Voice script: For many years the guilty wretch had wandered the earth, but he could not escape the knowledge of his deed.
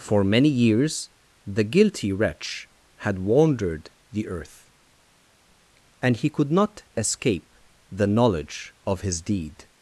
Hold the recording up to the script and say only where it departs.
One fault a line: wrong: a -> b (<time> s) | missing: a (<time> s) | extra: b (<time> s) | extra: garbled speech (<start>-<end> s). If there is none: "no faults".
wrong: but -> and (6.0 s)